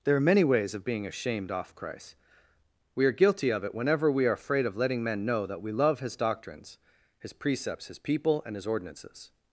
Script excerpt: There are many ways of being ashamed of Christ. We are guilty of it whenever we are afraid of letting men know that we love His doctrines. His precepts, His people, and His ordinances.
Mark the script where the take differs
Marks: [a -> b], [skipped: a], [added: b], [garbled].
There are many ways of being ashamed [of -> off] Christ. We are guilty of it whenever we are afraid of letting men know that we love His doctrines. His precepts, His people, and His ordinances.